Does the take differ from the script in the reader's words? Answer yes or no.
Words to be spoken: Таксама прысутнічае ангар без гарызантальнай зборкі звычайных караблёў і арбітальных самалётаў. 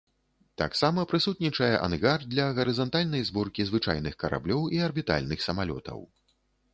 yes